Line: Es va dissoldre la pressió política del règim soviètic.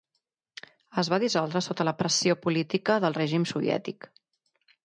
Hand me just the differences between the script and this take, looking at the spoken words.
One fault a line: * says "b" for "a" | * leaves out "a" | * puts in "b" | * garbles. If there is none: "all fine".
* puts in "sota"